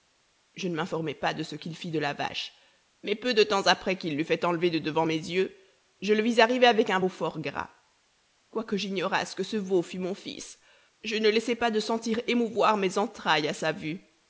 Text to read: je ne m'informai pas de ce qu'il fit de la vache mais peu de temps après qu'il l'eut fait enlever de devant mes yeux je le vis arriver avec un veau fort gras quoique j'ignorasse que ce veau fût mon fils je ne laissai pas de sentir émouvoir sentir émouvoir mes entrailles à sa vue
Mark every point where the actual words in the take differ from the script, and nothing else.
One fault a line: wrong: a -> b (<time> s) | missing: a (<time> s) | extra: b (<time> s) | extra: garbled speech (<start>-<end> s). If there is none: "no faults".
missing: sentir émouvoir (12.8 s)